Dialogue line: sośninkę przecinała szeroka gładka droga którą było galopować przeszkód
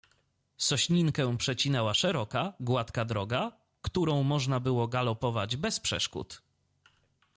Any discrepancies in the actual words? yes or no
yes